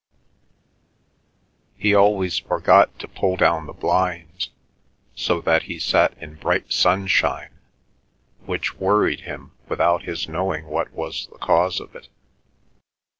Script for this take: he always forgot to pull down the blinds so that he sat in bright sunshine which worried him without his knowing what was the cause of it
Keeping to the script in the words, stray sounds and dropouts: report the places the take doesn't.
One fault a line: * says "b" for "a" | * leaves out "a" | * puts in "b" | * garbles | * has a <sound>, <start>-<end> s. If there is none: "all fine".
all fine